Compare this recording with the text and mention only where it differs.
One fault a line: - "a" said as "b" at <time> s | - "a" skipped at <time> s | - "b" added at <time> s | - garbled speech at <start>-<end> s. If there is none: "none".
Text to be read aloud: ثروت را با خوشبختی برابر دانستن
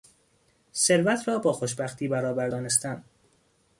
none